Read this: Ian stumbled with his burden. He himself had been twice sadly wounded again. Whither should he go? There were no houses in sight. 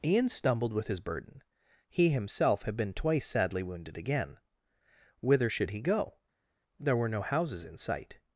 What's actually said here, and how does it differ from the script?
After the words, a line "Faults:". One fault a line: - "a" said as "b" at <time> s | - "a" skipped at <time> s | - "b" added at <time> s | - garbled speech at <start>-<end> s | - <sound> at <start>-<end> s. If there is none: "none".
Ian stumbled with his burden. He himself had been twice sadly wounded again. Whither should he go? There were no houses in sight.
Faults:
none